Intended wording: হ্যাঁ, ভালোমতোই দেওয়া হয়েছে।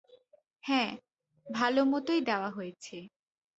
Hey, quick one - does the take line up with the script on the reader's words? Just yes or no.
yes